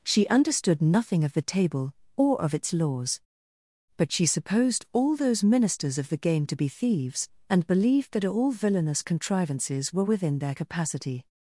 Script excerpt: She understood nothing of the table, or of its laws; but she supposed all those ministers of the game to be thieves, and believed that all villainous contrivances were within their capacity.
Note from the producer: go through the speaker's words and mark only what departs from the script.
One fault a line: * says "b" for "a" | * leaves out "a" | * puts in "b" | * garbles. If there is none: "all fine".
all fine